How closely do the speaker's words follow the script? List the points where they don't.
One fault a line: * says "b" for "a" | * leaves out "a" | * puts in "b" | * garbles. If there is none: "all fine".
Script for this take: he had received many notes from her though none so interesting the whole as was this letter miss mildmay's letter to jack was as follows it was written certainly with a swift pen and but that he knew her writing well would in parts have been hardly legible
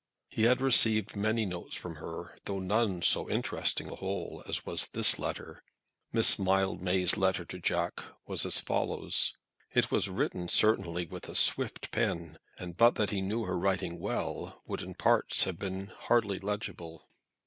all fine